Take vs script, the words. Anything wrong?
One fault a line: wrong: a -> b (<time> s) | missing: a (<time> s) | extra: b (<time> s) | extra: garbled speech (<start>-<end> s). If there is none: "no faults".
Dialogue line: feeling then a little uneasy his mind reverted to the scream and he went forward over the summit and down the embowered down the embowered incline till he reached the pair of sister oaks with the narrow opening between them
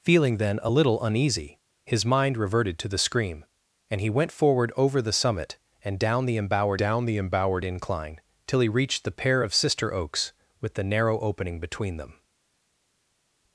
no faults